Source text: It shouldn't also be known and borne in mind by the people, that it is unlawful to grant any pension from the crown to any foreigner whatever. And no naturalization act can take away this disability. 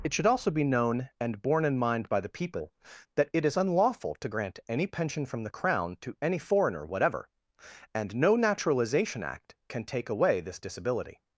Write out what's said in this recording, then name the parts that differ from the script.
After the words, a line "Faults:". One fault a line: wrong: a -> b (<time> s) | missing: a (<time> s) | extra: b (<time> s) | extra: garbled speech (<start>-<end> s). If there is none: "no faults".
It should also be known and borne in mind by the people, that it is unlawful to grant any pension from the crown to any foreigner whatever. And no naturalization act can take away this disability.
Faults:
wrong: shouldn't -> should (0.1 s)